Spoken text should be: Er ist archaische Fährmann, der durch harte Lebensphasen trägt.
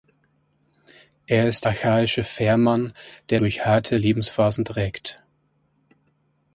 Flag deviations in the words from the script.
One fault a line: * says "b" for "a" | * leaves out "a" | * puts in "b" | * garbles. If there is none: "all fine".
all fine